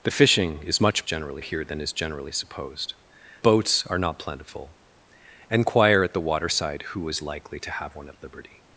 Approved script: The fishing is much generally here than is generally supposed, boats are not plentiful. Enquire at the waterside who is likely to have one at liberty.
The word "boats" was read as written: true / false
true